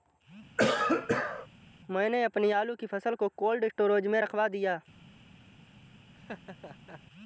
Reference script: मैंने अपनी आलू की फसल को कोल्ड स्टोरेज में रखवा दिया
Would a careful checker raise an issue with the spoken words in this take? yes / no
no